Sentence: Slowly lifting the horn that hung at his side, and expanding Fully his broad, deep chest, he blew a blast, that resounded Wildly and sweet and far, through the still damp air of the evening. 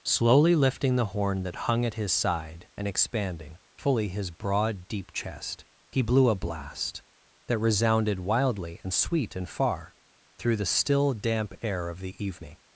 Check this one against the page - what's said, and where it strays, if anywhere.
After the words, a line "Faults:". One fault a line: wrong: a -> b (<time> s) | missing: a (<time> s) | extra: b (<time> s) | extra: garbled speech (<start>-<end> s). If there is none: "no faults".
Slowly lifting the horn that hung at his side, and expanding Fully his broad, deep chest, he blew a blast, that resounded Wildly and sweet and far, through the still damp air of the evening.
Faults:
no faults